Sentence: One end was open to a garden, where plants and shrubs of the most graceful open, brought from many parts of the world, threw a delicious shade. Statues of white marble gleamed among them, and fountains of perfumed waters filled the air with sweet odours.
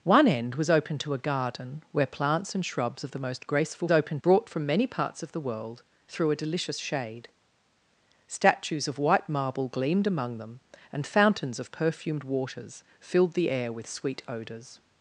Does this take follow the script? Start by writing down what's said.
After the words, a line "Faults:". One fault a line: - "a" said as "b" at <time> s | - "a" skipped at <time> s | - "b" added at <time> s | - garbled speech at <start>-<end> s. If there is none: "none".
One end was open to a garden, where plants and shrubs of the most graceful open, brought from many parts of the world, threw a delicious shade. Statues of white marble gleamed among them, and fountains of perfumed waters filled the air with sweet odours.
Faults:
none